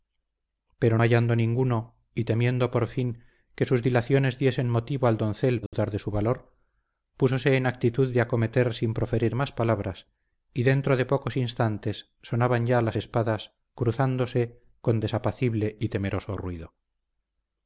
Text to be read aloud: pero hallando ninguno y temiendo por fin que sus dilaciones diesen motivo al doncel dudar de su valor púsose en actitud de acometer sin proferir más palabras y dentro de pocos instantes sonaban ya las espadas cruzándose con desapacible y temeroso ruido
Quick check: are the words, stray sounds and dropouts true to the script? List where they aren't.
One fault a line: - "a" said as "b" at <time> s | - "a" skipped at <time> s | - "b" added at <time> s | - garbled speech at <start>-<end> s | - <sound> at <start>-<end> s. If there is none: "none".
- dropout at 5.7-5.7 s